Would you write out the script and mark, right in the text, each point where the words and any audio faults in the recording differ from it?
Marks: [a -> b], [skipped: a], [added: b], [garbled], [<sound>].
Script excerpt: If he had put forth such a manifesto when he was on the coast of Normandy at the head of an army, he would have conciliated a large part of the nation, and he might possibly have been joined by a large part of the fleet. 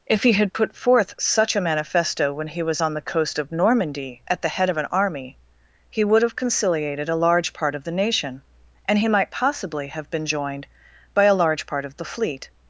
If he had put forth such a manifesto when he was on the coast of Normandy at the head of an army, he would have conciliated a large part of the nation, and he might possibly have been joined by a large part of the fleet.